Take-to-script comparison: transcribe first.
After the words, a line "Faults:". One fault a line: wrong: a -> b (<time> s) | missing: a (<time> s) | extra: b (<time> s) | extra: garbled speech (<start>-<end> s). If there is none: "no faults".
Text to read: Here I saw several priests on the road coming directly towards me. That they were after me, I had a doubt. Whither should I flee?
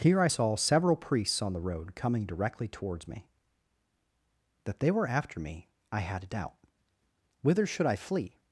Here I saw several priests on the road coming directly towards me. That they were after me, I had a doubt. Whither should I flee?
Faults:
no faults